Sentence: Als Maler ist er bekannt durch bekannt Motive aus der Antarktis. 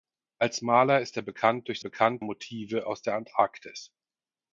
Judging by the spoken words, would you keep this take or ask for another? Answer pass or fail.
pass